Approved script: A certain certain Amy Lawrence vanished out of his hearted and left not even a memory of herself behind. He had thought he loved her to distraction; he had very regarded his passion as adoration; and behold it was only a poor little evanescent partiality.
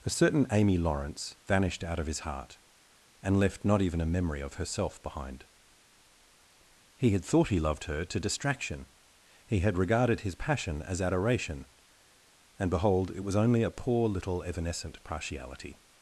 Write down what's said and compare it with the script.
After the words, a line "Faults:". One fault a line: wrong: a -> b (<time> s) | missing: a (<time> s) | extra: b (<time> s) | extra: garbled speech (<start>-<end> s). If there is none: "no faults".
A certain Amy Lawrence vanished out of his heart and left not even a memory of herself behind. He had thought he loved her to distraction; he had regarded his passion as adoration; and behold it was only a poor little evanescent partiality.
Faults:
missing: certain (0.5 s)
wrong: hearted -> heart (2.2 s)
missing: very (9.8 s)